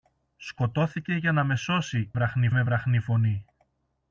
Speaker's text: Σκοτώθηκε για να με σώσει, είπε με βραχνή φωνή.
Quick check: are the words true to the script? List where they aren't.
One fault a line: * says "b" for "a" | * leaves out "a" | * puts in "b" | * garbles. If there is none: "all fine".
* says "βραχνή" for "είπε"